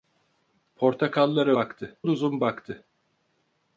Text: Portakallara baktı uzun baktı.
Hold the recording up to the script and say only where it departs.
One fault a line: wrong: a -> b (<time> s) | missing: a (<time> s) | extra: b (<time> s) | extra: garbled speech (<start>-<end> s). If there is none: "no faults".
no faults